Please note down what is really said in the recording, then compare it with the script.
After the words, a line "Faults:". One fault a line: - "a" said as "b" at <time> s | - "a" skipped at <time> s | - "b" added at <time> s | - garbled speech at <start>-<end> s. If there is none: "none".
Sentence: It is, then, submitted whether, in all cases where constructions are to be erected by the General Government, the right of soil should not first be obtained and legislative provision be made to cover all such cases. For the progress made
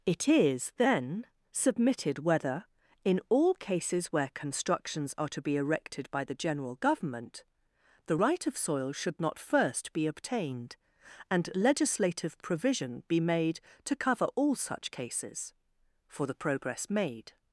It is, then, submitted whether, in all cases where constructions are to be erected by the General Government, the right of soil should not first be obtained and legislative provision be made to cover all such cases. For the progress made
Faults:
none